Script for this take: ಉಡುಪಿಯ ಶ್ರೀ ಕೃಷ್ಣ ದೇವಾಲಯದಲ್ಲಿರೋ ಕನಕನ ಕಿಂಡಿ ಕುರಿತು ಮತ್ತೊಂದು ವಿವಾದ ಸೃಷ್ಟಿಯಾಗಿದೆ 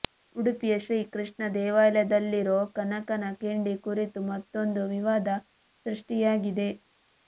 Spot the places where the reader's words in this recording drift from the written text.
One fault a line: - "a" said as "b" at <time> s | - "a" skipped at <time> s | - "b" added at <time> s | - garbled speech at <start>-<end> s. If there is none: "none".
none